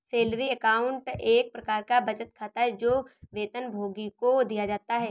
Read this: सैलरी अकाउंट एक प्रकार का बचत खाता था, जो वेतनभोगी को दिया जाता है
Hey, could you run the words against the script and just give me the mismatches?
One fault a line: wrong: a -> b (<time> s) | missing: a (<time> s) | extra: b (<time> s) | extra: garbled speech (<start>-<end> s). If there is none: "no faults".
wrong: था -> है (2.6 s)